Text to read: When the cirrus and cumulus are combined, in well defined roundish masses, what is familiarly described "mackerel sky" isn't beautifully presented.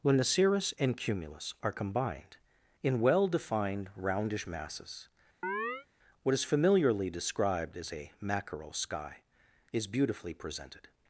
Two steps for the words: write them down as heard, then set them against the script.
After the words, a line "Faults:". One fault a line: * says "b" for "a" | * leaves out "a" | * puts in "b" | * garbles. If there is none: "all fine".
When the cirrus and cumulus are combined, in well defined roundish masses, what is familiarly described as a "mackerel sky" is beautifully presented.
Faults:
* puts in "as a"
* says "is" for "isn't"